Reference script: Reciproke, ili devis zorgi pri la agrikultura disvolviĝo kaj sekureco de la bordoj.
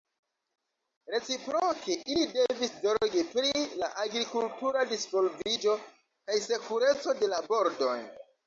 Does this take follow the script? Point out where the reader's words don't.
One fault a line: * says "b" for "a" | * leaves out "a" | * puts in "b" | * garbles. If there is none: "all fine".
all fine